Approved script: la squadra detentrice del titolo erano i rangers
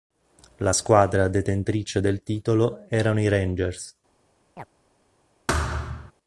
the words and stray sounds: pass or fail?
fail